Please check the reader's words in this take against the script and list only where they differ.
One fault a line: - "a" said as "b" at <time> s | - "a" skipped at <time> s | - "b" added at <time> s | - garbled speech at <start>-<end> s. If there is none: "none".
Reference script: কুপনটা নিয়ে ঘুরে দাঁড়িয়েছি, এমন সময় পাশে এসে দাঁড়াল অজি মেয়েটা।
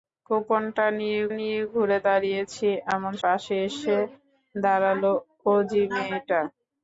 - "নিয়ে" added at 1.4 s
- "সময়" skipped at 3.1 s